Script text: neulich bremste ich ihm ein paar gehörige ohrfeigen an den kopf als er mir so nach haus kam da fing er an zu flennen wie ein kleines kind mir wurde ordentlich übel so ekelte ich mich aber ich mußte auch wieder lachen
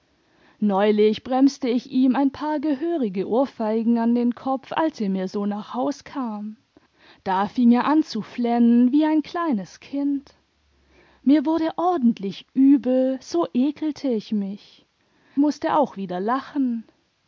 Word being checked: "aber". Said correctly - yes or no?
no